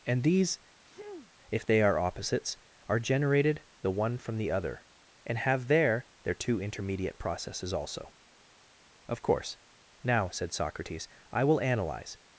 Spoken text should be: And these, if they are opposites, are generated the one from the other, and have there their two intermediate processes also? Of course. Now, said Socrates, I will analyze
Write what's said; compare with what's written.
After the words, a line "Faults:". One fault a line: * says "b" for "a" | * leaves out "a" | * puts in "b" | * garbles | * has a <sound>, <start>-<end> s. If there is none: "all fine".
And these, if they are opposites, are generated the one from the other, and have there their two intermediate processes also? Of course. Now, said Socrates, I will analyze
Faults:
* has a sneeze, 0.8-1.3 s